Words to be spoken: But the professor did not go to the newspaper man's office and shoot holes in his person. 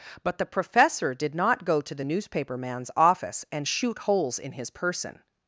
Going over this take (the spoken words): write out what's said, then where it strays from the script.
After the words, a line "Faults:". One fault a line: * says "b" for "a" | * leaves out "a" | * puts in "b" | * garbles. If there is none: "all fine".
But the professor did not go to the newspaper man's office and shoot holes in his person.
Faults:
all fine